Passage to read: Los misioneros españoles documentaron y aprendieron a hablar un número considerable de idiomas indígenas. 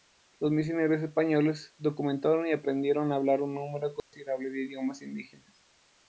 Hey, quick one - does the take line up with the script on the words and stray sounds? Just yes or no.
no